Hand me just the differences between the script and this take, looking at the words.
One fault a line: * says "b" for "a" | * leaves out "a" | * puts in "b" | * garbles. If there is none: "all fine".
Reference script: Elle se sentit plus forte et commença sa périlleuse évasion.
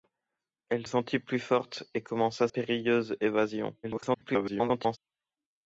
* leaves out "se"
* leaves out "sa"
* garbles